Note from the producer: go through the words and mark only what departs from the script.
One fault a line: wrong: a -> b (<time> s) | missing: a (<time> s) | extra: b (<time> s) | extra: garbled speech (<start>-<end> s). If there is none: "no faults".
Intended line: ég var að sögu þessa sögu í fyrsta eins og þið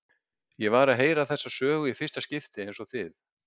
wrong: sögu -> heyra (1.0 s)
extra: skipti (2.3 s)